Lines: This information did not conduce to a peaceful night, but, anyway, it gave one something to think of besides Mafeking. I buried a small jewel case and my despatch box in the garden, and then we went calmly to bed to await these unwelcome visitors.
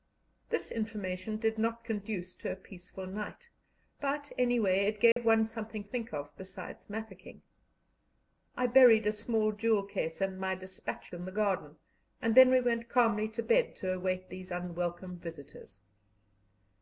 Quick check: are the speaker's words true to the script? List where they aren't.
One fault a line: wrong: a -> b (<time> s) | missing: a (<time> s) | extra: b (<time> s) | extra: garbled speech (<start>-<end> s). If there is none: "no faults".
missing: to (5.8 s)
missing: box (11.1 s)